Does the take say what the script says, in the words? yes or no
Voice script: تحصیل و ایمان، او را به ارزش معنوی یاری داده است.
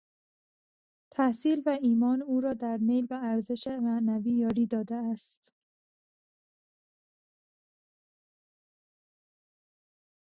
no